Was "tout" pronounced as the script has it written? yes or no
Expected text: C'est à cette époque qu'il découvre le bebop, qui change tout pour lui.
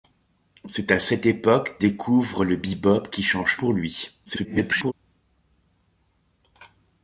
no